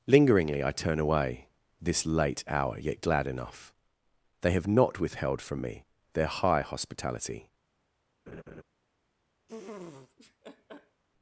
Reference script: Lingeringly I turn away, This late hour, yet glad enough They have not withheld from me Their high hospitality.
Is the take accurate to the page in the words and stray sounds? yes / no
no